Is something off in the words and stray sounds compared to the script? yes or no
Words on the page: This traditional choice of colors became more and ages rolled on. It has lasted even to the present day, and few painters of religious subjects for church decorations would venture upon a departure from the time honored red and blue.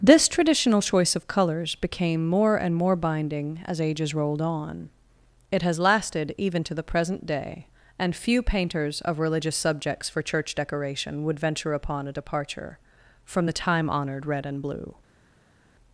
yes